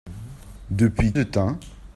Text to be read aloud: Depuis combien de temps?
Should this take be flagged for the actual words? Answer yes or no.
yes